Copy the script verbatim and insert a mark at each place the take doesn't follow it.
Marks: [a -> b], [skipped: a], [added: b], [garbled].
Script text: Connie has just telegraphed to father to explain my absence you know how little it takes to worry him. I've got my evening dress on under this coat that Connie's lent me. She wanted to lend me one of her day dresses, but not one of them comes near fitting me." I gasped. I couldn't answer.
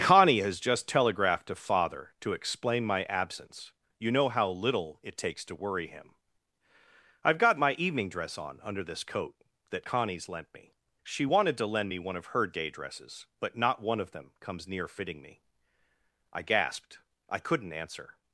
Connie has just telegraphed to father to explain my absence you know how little it takes to worry him. I've got my evening dress on under this coat that Connie's lent me. She wanted to lend me one of her day dresses, but not one of them comes near fitting me." I gasped. I couldn't answer.